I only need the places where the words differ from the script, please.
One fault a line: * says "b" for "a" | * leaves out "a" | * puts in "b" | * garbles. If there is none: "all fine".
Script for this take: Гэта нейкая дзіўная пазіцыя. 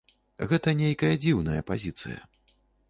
all fine